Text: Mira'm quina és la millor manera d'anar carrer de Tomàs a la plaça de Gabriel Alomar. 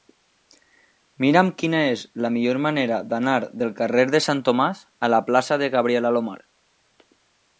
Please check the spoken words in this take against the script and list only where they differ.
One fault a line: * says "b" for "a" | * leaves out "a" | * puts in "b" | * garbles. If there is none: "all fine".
* puts in "del"
* puts in "Sant"